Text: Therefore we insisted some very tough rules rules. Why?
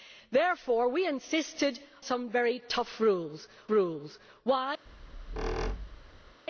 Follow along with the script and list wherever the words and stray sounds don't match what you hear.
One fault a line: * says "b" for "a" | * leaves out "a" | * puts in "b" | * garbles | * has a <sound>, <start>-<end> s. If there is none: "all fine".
* has a squeak, 4.9-6.4 s